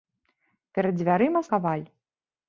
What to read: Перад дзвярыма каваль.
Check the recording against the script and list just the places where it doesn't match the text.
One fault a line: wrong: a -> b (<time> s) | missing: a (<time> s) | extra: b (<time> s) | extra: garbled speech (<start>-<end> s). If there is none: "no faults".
no faults